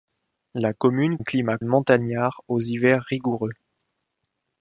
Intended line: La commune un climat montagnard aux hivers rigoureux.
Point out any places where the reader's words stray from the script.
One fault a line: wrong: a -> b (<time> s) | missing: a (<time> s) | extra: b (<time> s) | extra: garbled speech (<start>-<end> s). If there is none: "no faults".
no faults